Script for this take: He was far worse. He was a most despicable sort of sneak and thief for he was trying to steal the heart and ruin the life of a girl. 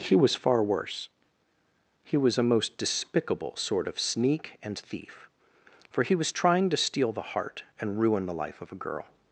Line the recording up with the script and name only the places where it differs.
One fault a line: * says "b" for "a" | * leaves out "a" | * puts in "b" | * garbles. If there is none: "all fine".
all fine